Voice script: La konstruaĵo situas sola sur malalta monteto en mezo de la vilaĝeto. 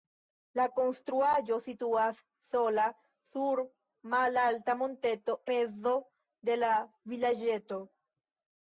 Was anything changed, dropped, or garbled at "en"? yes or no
yes